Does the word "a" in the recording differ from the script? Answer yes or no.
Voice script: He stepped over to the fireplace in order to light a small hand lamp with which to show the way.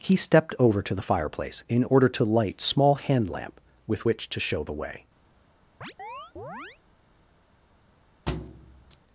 yes